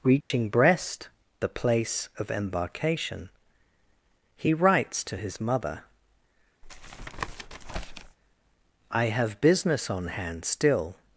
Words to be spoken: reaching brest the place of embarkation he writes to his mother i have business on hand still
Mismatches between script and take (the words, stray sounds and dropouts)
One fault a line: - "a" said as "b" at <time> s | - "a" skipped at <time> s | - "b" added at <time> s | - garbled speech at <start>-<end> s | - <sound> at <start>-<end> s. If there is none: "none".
- dropout at 0.2-0.3 s
- tap at 6.6-8.2 s